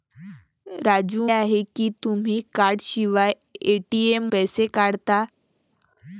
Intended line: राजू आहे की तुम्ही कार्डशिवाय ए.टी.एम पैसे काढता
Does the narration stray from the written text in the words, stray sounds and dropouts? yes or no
no